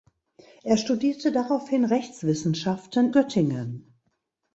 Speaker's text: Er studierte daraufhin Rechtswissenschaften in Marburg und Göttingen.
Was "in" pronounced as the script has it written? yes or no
no